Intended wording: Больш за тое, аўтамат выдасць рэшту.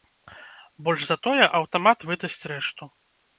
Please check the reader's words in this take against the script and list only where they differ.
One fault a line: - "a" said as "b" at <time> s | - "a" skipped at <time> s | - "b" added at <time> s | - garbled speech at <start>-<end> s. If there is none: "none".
none